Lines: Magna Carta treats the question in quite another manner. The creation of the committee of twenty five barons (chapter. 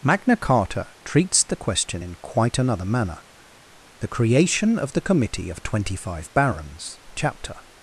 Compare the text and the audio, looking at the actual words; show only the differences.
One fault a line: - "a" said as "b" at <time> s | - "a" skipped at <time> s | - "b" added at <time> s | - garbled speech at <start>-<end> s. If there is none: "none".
none